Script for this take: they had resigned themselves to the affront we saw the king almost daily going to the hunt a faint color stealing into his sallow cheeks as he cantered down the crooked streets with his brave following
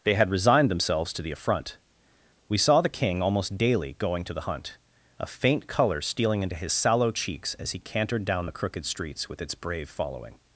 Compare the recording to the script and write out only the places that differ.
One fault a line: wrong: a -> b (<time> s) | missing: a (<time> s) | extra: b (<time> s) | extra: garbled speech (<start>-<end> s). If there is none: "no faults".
wrong: his -> its (9.4 s)